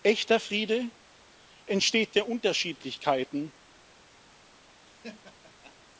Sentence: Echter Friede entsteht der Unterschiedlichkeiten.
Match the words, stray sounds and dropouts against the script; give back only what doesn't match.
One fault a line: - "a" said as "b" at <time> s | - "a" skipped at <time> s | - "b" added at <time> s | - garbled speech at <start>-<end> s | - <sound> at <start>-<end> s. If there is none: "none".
- laugh at 4.9-5.7 s